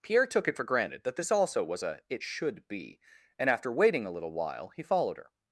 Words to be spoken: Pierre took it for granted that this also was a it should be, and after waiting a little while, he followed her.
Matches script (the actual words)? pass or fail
pass